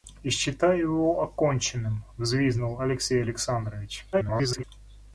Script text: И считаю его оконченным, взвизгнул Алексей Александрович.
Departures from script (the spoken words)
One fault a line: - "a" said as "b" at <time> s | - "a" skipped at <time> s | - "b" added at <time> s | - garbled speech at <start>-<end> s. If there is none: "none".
- garbled speech at 4.1-4.6 s